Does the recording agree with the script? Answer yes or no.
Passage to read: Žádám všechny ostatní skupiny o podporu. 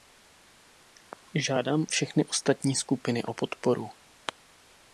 yes